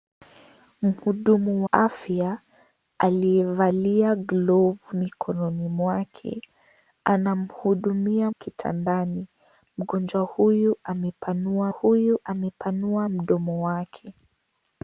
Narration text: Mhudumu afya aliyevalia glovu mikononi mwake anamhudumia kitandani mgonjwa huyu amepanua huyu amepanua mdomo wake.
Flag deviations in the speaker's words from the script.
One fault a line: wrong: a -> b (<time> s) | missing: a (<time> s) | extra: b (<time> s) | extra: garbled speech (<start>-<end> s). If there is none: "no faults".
no faults